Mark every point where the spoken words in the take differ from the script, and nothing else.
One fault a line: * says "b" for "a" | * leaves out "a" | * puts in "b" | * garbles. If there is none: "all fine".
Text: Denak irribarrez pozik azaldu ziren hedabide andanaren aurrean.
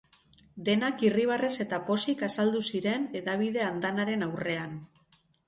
* puts in "eta"